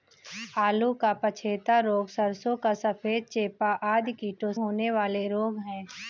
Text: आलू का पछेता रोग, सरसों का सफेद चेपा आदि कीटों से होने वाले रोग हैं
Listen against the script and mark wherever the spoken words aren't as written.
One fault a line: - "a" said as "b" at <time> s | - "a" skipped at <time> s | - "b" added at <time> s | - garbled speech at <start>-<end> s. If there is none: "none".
- "से" skipped at 4.5 s